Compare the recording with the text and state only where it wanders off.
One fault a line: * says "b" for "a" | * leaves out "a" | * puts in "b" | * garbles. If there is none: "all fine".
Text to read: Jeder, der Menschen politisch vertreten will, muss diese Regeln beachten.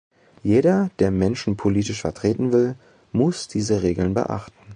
all fine